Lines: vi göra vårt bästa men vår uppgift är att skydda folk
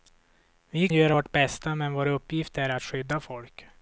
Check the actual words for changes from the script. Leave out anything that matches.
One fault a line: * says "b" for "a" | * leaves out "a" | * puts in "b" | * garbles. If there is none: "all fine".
all fine